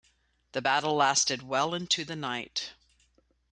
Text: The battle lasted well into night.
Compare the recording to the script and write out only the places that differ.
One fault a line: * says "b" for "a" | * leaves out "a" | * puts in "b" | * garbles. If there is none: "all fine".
* puts in "the"